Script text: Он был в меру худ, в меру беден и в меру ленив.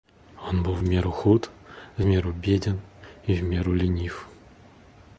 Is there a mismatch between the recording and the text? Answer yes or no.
no